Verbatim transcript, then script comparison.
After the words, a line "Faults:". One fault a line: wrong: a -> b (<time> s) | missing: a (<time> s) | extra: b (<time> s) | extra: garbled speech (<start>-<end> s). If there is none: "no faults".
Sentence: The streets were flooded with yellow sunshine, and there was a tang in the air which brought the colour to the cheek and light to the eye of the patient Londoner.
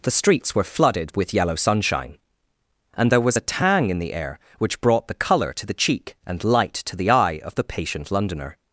The streets were flooded with yellow sunshine, and there was a tang in the air which brought the colour to the cheek and light to the eye of the patient Londoner.
Faults:
no faults